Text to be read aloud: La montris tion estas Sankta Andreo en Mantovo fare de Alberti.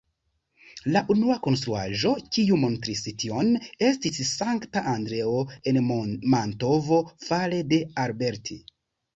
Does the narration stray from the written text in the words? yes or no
yes